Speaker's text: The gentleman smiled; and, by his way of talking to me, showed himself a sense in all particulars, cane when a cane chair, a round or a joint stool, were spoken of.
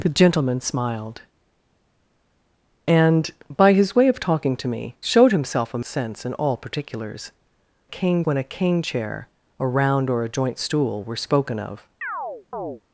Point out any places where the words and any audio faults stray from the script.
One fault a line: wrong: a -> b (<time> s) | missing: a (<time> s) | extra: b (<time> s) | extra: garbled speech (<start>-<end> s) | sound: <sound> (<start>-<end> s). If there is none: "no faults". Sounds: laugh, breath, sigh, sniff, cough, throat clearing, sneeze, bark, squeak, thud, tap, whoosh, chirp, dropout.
sound: chirp (12.0-12.8 s)